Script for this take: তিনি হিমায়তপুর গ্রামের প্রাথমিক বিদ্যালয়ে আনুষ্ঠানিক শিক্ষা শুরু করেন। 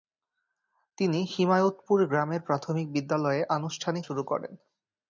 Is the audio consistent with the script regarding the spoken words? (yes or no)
no